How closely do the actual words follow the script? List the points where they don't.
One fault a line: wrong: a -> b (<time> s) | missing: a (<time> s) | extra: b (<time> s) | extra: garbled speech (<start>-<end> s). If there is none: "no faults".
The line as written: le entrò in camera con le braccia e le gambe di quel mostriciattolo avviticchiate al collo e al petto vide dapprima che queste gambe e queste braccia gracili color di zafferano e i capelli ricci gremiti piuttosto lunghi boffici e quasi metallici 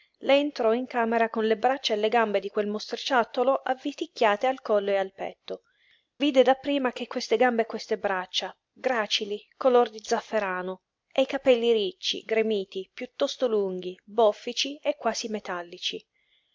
no faults